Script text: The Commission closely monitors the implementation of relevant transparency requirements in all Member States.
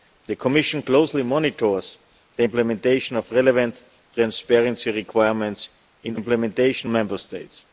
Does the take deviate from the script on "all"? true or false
true